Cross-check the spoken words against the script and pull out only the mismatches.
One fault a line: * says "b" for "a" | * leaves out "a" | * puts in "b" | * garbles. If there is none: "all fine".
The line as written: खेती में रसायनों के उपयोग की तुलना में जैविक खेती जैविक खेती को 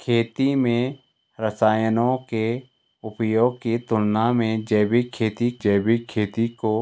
all fine